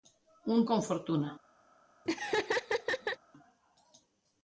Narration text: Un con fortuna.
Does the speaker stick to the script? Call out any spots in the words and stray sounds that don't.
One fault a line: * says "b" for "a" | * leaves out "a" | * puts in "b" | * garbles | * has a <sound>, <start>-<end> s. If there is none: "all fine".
* has a laugh, 2.1-3.2 s